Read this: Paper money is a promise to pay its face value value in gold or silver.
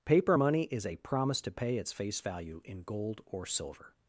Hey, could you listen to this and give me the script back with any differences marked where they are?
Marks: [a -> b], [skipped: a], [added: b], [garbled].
Paper money is a promise to pay its face value [skipped: value] in gold or silver.